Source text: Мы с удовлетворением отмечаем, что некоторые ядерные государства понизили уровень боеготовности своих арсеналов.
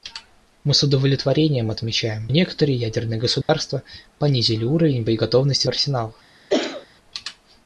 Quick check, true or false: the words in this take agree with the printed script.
false